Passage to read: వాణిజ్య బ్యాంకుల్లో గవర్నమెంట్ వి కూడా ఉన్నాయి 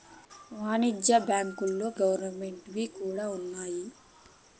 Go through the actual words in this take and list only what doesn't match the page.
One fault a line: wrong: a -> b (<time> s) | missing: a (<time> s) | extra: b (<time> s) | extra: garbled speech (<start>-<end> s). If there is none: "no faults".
no faults